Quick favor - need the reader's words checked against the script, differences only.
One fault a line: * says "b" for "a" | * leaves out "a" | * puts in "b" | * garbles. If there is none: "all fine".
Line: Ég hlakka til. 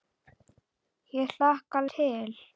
all fine